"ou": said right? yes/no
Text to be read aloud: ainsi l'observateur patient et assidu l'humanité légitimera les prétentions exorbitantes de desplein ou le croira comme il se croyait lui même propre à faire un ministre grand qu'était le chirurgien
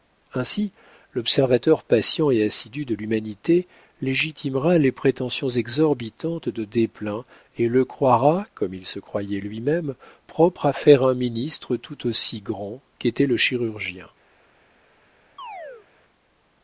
no